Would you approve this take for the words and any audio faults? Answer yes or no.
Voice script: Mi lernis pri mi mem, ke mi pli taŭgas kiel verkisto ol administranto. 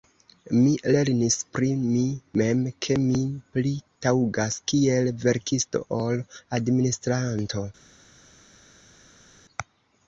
yes